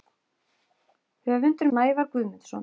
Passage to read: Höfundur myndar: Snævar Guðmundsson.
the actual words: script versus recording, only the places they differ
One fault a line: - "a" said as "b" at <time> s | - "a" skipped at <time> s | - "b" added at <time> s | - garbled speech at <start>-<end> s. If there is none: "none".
- "myndar" skipped at 1.7 s